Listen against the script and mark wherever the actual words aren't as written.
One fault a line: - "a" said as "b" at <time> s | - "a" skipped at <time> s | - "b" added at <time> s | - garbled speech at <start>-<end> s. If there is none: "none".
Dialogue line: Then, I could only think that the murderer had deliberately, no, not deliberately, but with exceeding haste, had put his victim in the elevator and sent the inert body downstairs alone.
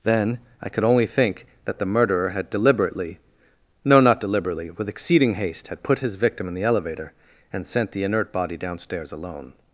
- "but" skipped at 4.7 s